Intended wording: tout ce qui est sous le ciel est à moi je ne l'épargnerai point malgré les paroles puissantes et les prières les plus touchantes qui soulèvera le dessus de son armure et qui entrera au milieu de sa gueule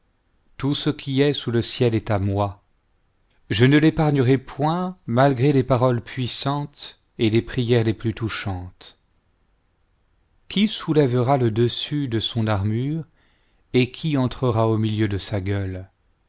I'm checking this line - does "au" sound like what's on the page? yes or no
yes